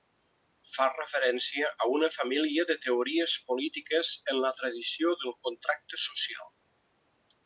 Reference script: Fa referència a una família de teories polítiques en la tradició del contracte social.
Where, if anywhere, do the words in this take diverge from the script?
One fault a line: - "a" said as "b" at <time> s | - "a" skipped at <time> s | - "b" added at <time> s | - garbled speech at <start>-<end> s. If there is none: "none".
none